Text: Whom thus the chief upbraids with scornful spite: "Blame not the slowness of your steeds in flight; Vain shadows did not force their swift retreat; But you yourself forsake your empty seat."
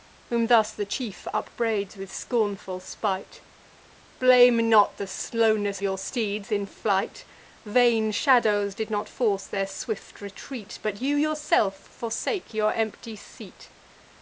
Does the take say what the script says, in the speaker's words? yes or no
no